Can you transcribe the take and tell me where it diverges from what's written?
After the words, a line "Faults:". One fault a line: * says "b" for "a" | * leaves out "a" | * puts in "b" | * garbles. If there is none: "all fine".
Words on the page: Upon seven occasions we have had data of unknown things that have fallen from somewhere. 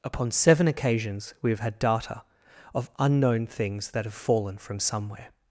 Upon seven occasions we have had data of unknown things that have fallen from somewhere.
Faults:
all fine